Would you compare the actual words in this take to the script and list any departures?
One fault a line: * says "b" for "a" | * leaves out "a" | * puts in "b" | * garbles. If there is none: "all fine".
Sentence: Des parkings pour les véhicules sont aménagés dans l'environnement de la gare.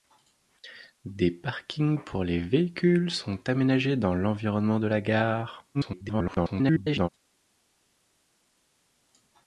* garbles